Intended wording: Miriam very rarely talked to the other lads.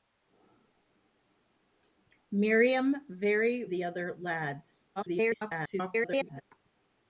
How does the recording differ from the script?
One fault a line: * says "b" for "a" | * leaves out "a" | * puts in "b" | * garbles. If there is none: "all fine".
* leaves out "rarely talked to"
* garbles